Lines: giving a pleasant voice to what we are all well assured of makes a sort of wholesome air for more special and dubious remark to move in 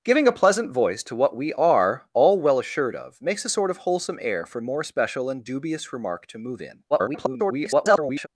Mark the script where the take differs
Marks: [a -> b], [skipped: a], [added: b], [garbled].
giving a pleasant voice to what we are all well assured of makes a sort of wholesome air for more special and dubious remark to move in [garbled]